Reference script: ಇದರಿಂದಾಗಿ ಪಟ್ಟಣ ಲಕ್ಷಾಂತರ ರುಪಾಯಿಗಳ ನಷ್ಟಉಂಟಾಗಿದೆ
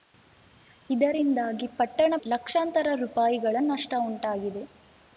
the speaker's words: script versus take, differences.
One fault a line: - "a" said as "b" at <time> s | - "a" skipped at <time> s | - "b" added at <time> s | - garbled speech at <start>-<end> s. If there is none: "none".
none